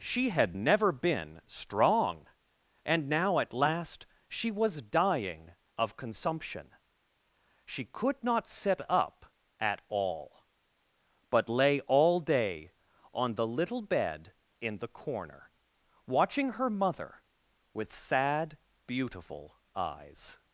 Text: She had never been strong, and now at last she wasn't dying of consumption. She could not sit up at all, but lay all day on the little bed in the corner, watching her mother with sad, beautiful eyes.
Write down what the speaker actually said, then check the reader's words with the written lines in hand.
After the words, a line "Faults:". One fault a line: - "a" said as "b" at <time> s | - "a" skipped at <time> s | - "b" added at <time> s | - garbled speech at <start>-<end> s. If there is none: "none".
She had never been strong, and now at last she was dying of consumption. She could not sit up at all, but lay all day on the little bed in the corner, watching her mother with sad, beautiful eyes.
Faults:
- "wasn't" said as "was" at 4.5 s